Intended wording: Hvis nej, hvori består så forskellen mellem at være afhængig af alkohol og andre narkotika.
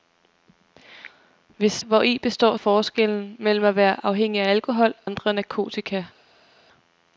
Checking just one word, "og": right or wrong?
wrong